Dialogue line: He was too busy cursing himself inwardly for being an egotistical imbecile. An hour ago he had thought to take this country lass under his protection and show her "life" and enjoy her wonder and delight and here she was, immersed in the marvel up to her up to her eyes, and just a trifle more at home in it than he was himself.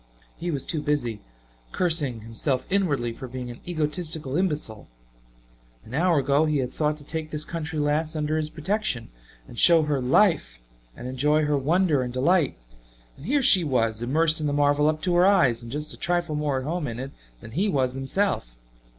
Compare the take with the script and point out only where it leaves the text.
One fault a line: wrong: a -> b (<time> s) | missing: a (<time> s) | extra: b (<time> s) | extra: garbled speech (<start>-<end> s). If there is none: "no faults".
missing: up to her (15.3 s)